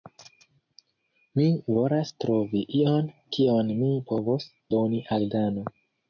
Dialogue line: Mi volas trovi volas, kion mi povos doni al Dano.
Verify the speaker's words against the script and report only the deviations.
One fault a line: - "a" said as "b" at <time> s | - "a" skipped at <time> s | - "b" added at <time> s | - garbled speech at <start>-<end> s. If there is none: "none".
- "volas" said as "ion" at 2.8 s